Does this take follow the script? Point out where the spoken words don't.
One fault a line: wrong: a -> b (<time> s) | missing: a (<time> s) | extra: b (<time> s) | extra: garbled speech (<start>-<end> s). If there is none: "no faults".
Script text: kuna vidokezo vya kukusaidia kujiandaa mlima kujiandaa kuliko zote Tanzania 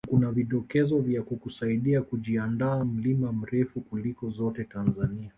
wrong: kujiandaa -> mrefu (3.3 s)